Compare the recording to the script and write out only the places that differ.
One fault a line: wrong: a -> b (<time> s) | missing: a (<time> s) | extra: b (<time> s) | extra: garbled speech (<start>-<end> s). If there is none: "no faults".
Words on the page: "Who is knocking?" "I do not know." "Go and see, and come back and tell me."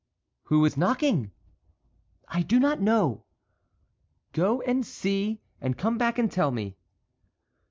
no faults